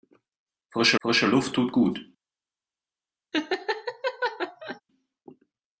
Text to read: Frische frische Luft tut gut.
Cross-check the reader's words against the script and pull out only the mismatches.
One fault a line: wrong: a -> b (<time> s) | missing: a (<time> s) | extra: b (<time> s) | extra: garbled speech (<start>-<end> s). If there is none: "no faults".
no faults